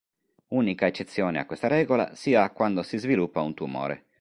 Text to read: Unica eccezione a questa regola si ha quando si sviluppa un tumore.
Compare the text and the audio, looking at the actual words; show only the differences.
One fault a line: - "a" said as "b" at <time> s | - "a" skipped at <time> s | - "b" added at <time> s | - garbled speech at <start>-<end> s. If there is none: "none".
none